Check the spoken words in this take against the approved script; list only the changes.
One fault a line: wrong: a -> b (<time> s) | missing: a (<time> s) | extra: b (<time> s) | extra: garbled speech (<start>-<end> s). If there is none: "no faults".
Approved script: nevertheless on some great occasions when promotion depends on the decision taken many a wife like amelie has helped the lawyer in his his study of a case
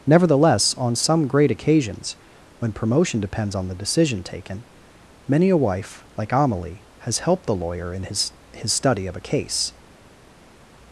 no faults